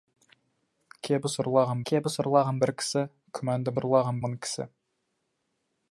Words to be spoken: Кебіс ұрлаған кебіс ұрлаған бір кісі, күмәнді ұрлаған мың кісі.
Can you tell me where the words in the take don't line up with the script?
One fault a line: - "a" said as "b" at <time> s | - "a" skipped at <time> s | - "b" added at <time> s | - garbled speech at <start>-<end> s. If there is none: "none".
none